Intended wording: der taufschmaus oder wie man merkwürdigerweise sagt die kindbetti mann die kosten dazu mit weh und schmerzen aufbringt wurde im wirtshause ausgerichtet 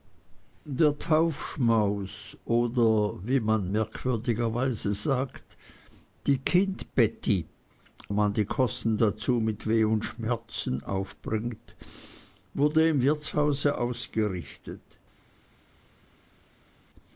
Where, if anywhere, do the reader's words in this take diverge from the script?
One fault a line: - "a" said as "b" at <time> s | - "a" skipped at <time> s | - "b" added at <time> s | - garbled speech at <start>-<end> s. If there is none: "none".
none